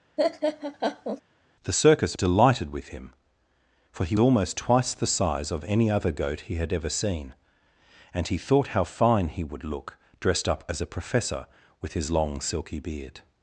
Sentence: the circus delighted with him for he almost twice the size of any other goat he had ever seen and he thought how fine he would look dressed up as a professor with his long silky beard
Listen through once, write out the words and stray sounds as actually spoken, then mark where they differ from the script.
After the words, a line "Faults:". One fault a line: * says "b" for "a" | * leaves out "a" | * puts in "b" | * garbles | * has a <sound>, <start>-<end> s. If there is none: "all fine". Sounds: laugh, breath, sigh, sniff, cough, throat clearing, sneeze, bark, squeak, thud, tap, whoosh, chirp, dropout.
the circus delighted with him for he almost twice the size of any other goat he had ever seen and he thought how fine he would look dressed up as a professor with his long silky beard
Faults:
* has a laugh, 0.2-1.2 s